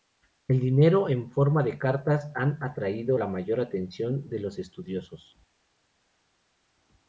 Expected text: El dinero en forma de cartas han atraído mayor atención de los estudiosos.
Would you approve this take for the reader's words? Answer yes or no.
no